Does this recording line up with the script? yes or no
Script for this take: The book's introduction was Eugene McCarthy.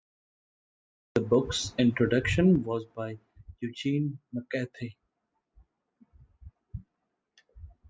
no